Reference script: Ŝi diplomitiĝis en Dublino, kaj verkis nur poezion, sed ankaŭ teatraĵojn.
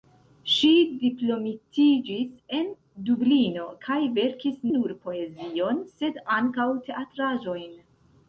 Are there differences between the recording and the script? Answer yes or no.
no